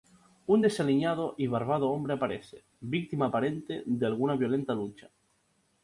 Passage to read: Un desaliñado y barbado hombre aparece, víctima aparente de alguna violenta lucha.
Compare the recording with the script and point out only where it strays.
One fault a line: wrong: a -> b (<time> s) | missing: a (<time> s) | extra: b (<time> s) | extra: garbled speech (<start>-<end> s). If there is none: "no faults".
no faults